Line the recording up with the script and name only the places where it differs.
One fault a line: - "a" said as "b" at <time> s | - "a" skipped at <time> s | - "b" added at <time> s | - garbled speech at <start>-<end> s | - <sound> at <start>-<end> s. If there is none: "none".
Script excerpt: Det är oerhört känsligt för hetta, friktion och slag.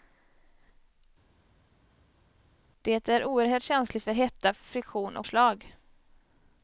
none